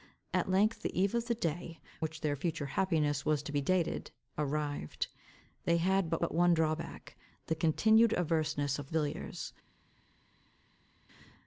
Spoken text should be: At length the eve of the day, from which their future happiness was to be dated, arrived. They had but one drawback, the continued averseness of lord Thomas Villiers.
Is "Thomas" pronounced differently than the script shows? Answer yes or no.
yes